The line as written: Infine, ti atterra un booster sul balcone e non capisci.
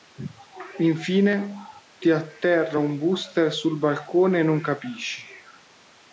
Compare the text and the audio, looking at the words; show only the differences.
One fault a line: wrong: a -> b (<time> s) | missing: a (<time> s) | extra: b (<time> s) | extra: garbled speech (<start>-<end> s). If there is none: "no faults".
no faults